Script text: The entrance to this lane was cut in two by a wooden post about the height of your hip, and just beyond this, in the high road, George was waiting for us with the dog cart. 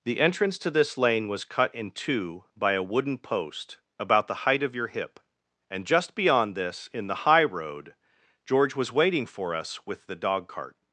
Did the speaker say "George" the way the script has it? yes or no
yes